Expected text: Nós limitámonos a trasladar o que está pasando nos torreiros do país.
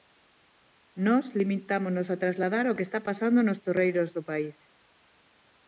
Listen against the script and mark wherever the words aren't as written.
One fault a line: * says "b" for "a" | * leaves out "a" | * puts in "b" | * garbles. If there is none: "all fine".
all fine